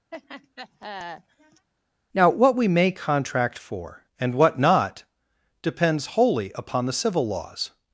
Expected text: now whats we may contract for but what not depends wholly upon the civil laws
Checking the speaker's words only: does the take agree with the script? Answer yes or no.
no